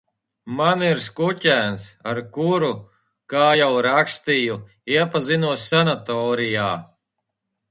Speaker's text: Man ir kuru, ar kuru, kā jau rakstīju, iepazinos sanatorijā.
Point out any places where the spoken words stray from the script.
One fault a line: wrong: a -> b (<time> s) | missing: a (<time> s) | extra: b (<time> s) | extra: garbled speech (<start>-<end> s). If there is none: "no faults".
wrong: kuru -> skuķēns (1.1 s)